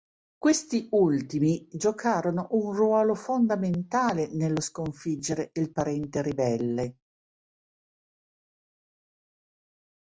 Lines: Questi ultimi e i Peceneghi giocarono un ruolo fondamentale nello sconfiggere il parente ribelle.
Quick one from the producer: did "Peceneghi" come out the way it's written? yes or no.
no